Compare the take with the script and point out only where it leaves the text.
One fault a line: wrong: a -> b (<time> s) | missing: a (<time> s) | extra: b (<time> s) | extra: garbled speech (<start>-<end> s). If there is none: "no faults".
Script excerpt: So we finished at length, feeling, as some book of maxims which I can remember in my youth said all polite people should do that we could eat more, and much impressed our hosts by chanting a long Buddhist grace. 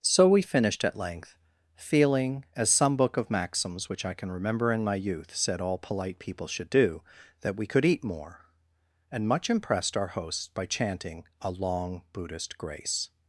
no faults